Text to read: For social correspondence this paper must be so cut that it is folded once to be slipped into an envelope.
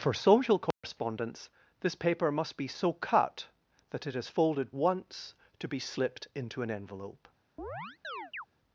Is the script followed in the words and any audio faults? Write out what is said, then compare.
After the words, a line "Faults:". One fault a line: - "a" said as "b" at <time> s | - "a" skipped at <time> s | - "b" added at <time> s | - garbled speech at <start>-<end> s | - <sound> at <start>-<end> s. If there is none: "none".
For social correspondence this paper must be so cut that it is folded once to be slipped into an envelope.
Faults:
- dropout at 0.7-0.8 s
- chirp at 7.6-8.5 s